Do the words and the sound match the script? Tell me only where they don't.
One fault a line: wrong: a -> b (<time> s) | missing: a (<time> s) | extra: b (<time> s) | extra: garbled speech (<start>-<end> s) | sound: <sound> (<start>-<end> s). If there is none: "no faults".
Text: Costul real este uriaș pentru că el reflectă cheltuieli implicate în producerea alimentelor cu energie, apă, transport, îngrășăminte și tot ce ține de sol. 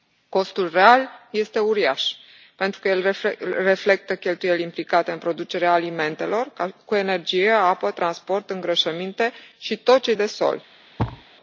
missing: ține (10.1 s)
sound: thud (11.0-11.3 s)